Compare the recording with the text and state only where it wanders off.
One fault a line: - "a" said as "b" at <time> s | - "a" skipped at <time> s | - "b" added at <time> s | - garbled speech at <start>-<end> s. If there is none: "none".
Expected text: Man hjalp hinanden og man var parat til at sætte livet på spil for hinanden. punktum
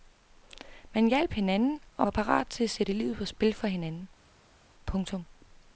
- "man" skipped at 2.1 s